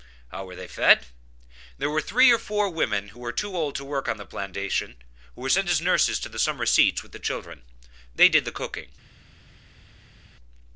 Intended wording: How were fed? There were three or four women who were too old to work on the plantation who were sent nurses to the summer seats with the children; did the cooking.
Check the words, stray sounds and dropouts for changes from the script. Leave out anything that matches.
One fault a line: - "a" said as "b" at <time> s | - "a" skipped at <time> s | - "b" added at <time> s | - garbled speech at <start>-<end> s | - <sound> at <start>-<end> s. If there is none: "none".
- "they" added at 0.6 s
- "as" added at 5.7 s
- "they" added at 8.1 s